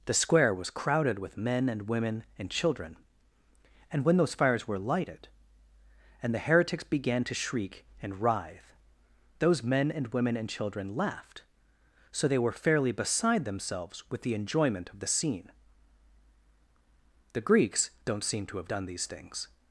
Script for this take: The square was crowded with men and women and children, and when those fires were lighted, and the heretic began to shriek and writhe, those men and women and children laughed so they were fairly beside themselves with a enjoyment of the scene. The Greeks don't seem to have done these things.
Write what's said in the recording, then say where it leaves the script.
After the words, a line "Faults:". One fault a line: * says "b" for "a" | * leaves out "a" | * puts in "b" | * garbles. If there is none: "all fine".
The square was crowded with men and women and children, and when those fires were lighted, and the heretics began to shriek and writhe, those men and women and children laughed so they were fairly beside themselves with the enjoyment of the scene. The Greeks don't seem to have done these things.
Faults:
* says "heretics" for "heretic"
* says "the" for "a"